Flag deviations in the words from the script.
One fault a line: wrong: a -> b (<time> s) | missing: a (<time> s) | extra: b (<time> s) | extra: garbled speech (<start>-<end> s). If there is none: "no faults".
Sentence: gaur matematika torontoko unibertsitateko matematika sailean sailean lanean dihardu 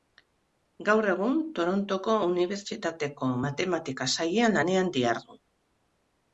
wrong: matematika -> egun (1.1 s)
missing: sailean (4.6 s)